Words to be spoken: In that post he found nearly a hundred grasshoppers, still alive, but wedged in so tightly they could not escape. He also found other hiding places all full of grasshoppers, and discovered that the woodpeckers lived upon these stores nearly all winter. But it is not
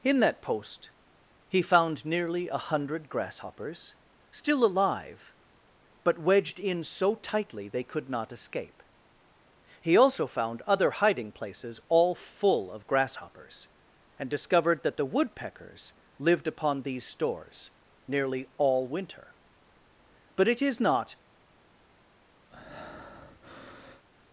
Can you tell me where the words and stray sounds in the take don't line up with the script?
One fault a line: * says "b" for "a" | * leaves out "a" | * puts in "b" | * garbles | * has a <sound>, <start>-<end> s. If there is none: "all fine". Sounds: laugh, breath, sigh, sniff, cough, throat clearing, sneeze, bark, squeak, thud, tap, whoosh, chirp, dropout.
* has a breath, 22.5-24.0 s